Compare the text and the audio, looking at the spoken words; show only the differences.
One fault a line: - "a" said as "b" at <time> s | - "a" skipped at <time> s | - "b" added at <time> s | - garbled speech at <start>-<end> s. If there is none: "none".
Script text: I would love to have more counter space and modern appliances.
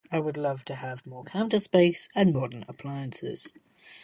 none